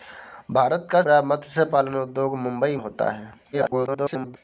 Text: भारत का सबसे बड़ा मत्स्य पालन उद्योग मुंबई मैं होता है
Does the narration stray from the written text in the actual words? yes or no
yes